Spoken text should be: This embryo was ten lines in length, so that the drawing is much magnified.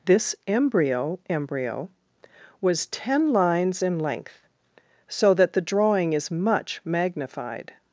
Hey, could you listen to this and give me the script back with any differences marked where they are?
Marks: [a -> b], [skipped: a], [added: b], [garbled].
This embryo [added: embryo] was ten lines in length, so that the drawing is much magnified.